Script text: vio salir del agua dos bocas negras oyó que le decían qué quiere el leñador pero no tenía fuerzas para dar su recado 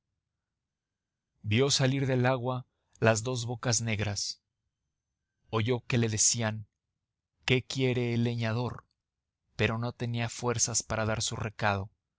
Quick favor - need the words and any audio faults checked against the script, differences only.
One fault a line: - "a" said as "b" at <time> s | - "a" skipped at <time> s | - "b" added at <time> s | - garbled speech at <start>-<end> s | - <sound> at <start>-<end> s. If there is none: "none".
- "las" added at 3.0 s